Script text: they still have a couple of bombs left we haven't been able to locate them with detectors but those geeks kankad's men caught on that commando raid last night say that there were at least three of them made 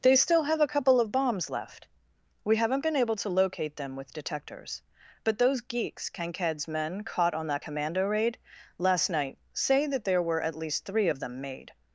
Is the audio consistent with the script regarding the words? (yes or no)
yes